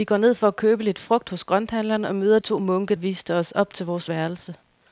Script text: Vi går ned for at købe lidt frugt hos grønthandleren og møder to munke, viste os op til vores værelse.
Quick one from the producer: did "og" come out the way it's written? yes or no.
yes